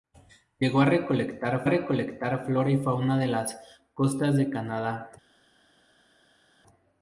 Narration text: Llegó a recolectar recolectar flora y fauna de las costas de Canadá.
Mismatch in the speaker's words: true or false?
false